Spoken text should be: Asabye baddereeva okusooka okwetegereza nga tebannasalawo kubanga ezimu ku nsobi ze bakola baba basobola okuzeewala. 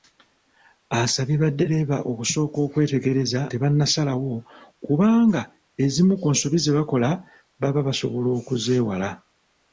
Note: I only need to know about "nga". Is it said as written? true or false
false